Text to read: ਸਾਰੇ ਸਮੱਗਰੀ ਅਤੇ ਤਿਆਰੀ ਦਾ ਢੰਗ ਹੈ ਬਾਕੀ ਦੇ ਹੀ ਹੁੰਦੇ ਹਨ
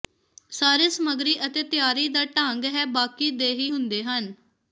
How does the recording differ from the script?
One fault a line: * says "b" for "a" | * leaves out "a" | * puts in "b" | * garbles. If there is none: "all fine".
all fine